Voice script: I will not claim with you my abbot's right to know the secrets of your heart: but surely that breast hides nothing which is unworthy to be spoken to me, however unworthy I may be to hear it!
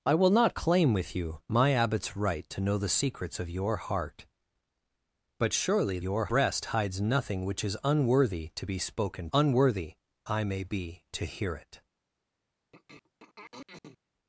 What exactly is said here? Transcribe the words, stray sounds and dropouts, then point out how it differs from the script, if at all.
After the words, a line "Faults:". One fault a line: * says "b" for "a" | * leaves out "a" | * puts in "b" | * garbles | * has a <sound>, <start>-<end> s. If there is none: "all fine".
I will not claim with you my abbot's right to know the secrets of your heart: but surely your breast hides nothing which is unworthy to be spoken unworthy I may be to hear it!
Faults:
* says "your" for "that"
* leaves out "to me however"
* has a throat clearing, 12.7-14.0 s